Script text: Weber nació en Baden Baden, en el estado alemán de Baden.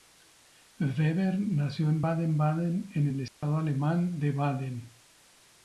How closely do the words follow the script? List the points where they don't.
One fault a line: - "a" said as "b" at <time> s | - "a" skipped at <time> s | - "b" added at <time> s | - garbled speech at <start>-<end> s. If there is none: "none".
none